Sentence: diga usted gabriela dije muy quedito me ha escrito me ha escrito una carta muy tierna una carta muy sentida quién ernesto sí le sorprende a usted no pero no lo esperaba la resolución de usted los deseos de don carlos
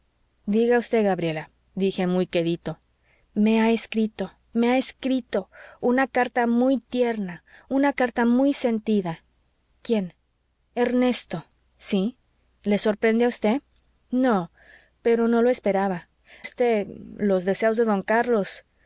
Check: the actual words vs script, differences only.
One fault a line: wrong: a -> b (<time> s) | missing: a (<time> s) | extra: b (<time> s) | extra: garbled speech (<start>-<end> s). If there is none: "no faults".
missing: la resolución de (16.1 s)